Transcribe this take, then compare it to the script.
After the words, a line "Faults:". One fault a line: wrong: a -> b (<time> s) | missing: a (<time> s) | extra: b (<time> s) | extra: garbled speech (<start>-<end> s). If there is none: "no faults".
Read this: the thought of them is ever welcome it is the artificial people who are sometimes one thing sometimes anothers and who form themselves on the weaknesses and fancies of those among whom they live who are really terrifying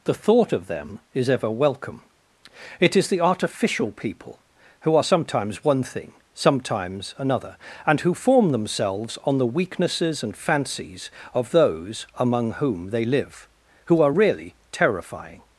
the thought of them is ever welcome it is the artificial people who are sometimes one thing sometimes another and who form themselves on the weaknesses and fancies of those among whom they live who are really terrifying
Faults:
wrong: anothers -> another (7.2 s)